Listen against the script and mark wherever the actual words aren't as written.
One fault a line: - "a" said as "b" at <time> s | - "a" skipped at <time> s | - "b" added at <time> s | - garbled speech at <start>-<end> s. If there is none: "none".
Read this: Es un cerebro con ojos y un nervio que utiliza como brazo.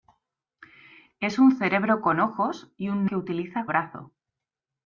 - "nervio" skipped at 3.0 s
- "como" skipped at 3.7 s